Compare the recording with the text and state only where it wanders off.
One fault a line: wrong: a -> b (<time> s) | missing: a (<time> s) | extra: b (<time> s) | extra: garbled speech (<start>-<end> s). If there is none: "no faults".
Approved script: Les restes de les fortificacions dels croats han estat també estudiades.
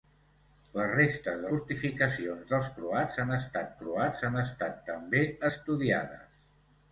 missing: les (1.5 s)
extra: croats han estat (3.8 s)